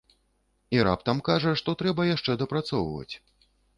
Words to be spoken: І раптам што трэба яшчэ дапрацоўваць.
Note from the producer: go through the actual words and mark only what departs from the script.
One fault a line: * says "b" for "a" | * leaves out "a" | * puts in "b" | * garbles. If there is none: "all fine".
* puts in "кажа"